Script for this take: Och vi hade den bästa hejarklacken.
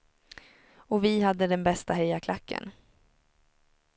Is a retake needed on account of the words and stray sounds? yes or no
no